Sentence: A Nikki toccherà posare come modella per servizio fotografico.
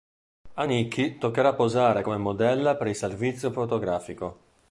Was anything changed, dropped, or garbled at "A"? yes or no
no